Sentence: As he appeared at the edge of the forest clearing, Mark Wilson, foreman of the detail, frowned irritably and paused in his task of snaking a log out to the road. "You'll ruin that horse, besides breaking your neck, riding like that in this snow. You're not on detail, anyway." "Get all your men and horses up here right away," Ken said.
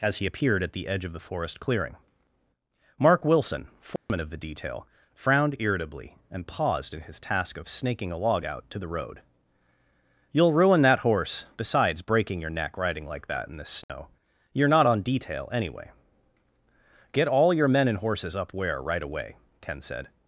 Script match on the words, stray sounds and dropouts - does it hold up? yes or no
no